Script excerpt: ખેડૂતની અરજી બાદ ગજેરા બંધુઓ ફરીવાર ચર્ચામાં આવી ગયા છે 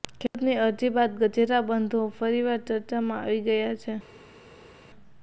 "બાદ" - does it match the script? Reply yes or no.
yes